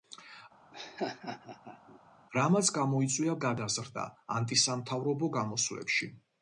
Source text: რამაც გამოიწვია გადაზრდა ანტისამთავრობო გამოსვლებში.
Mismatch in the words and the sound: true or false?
true